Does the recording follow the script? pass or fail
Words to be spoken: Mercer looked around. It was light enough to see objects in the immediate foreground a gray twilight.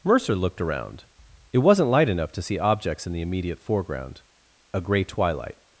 fail